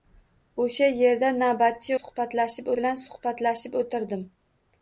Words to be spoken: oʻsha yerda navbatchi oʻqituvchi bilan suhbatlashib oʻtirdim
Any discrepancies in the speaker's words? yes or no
yes